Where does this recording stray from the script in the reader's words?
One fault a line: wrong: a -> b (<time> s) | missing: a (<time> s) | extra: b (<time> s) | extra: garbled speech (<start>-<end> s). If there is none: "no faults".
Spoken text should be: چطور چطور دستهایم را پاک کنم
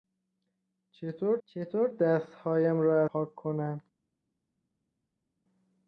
no faults